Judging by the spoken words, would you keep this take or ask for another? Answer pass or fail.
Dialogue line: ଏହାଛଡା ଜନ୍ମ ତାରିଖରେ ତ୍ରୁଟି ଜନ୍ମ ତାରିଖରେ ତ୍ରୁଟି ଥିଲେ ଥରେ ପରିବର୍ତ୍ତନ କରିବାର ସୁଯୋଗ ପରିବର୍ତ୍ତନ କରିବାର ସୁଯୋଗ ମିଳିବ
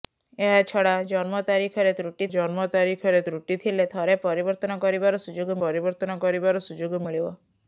pass